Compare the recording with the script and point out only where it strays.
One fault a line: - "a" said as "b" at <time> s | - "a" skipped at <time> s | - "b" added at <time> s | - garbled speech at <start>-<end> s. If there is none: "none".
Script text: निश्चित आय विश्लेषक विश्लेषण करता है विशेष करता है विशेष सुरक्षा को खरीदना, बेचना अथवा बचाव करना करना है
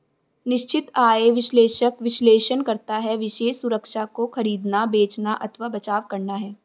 - "करता है विशेष" skipped at 3.6 s
- "करना" skipped at 6.3 s